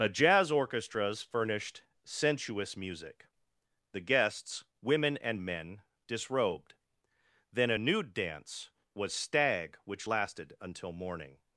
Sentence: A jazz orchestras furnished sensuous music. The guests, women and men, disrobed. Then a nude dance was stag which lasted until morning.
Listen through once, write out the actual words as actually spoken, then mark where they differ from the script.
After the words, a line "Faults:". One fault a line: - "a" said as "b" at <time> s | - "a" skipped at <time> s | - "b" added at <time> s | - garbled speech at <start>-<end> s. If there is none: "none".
A jazz orchestras furnished sensuous music. The guests, women and men, disrobed. Then a nude dance was stag which lasted until morning.
Faults:
none